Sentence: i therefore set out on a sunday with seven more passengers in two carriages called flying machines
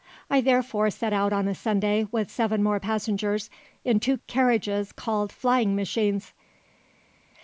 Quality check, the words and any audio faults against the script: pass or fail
pass